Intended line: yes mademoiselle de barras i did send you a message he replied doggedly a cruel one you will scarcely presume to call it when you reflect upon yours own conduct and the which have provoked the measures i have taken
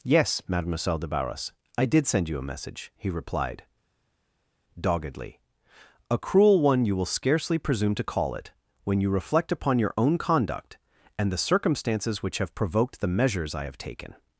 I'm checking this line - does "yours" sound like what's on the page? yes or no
no